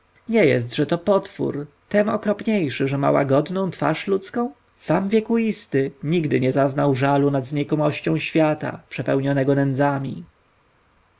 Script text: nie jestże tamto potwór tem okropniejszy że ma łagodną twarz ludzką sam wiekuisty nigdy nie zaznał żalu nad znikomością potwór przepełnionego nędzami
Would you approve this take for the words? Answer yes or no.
no